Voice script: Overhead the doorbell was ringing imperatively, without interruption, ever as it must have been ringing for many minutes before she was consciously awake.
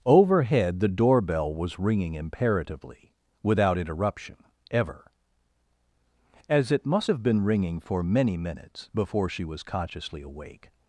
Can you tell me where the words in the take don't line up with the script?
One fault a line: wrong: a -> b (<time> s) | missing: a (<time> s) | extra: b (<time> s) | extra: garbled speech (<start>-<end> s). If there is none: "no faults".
no faults